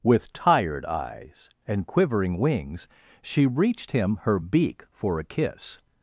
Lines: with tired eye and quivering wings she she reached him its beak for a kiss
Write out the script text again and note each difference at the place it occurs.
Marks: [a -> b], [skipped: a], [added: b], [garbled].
with tired [eye -> eyes] and quivering wings she [skipped: she] reached him [its -> her] beak for a kiss